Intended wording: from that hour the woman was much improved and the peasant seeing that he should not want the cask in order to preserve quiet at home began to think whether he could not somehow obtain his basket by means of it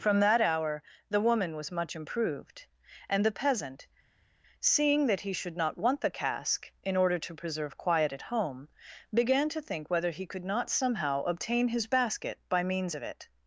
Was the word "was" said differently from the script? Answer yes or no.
no